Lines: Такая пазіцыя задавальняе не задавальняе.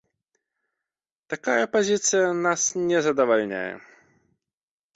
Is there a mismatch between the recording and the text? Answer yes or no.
yes